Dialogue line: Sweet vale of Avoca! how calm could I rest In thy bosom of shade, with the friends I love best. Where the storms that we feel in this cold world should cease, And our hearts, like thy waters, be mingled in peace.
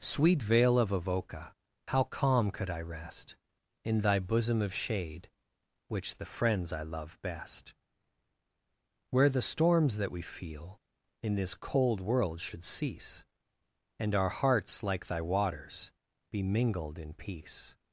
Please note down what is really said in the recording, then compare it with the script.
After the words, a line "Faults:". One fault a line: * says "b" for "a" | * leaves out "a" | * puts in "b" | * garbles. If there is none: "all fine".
Sweet vale of Avoca! how calm could I rest In thy bosom of shade, which the friends I love best. Where the storms that we feel in this cold world should cease, And our hearts, like thy waters, be mingled in peace.
Faults:
* says "which" for "with"